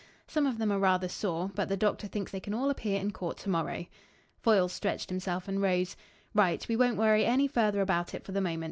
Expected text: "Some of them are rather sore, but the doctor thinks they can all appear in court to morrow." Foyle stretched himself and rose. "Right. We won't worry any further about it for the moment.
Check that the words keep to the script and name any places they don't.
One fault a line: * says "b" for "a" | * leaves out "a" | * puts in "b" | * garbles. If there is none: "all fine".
all fine